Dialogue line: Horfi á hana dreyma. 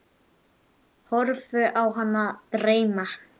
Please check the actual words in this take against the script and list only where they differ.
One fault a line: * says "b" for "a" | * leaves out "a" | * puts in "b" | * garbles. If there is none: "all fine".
all fine